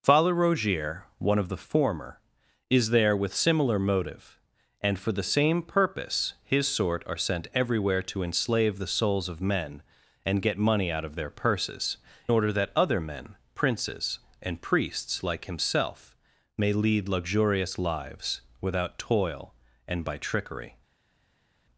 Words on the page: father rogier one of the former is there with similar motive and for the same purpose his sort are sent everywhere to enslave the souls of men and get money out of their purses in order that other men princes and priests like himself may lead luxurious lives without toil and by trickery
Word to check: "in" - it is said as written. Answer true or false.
false